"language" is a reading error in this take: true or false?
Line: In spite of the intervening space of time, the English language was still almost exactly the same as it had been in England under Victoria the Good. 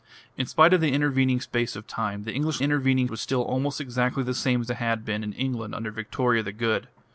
true